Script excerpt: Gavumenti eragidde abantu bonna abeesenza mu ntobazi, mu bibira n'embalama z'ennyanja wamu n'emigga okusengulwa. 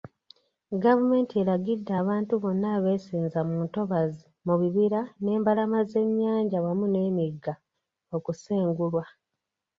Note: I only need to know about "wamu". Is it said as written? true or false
true